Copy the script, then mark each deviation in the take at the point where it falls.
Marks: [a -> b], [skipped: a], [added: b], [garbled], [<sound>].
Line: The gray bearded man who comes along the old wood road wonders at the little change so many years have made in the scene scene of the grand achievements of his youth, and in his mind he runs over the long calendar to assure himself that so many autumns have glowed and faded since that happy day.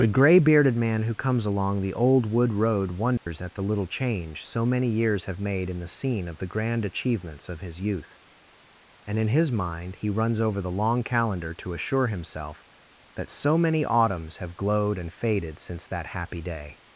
The gray bearded man who comes along the old wood road wonders [dropout] at the little change so many years have made in the scene [skipped: scene] of the grand achievements of his youth, and in his mind he runs over the long calendar to assure himself that so many autumns have glowed and faded since that happy day.